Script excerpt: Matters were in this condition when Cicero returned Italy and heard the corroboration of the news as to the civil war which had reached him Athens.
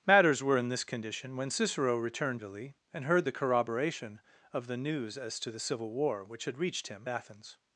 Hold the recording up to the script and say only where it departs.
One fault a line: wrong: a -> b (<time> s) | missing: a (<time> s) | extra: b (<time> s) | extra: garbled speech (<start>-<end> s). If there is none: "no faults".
no faults